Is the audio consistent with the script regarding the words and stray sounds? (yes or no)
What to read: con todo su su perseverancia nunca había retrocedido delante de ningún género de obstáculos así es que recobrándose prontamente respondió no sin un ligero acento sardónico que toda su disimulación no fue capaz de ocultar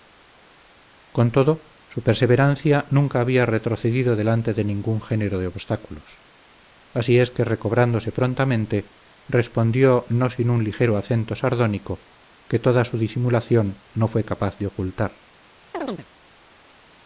no